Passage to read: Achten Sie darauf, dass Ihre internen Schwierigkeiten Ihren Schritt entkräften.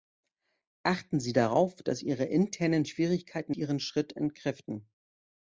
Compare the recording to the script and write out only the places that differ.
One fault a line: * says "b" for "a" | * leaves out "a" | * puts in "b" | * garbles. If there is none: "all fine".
all fine